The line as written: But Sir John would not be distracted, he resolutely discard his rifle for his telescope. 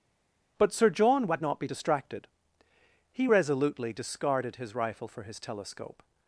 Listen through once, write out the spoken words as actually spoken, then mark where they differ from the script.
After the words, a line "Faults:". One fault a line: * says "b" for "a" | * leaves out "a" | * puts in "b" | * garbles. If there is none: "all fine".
But Sir John would not be distracted, he resolutely discarded his rifle for his telescope.
Faults:
* says "discarded" for "discard"